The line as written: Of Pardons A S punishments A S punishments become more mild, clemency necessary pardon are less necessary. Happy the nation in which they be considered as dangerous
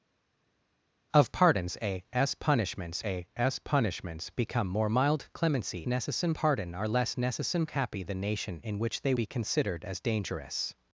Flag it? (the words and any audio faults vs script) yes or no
no